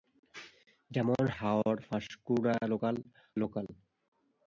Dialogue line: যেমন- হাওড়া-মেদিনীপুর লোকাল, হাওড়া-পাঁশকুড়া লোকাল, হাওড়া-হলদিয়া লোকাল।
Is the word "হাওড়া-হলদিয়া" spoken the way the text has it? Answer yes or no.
no